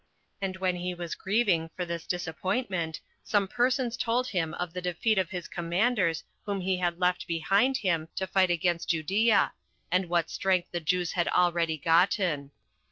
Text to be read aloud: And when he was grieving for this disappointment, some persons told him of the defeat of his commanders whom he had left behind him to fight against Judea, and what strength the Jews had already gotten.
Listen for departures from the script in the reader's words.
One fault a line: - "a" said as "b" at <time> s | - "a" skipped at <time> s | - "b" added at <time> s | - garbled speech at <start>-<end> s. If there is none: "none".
none